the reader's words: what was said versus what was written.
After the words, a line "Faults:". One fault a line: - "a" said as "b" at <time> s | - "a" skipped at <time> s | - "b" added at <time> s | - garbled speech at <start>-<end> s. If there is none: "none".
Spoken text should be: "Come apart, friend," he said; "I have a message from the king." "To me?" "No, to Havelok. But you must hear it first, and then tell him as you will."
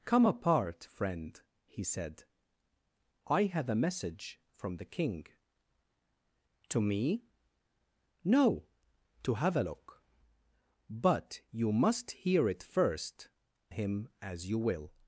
"Come apart, friend," he said; "I have a message from the king." "To me?" "No, to Havelok. But you must hear it first, him as you will."
Faults:
- "and then tell" skipped at 13.3 s